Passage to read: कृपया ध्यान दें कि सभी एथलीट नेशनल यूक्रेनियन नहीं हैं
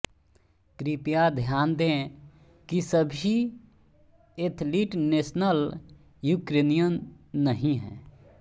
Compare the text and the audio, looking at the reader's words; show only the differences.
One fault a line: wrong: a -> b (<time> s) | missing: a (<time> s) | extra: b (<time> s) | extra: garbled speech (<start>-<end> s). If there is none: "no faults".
no faults